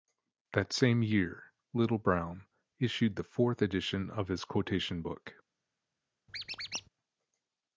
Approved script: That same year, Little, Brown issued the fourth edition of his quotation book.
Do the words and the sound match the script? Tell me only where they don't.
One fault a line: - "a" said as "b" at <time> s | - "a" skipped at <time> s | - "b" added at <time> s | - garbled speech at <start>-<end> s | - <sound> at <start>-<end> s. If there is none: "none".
- squeak at 6.3-6.9 s